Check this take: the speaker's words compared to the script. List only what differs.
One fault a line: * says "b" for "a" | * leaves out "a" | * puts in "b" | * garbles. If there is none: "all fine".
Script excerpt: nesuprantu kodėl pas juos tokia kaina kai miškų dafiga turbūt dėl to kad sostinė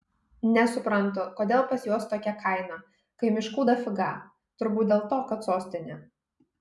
all fine